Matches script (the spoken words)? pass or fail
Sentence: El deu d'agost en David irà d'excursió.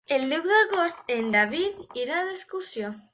pass